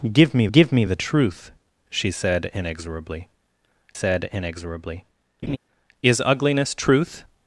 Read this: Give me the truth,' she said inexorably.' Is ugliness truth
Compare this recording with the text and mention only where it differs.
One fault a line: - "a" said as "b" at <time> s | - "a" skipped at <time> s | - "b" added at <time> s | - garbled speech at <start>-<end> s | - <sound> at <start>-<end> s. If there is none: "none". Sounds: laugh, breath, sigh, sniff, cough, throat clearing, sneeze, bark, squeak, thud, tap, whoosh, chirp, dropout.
- "give me" added at 0.5 s
- "said inexorably" added at 3.9 s
- laugh at 5.4-5.6 s